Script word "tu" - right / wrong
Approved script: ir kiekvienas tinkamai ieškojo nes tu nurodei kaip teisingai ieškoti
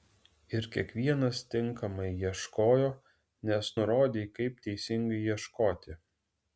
wrong